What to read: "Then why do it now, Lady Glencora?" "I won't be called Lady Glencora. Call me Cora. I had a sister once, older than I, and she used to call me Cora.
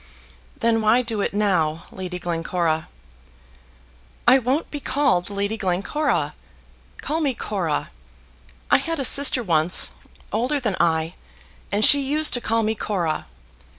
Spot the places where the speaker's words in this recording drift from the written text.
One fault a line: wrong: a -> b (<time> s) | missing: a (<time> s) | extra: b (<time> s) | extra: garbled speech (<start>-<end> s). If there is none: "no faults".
no faults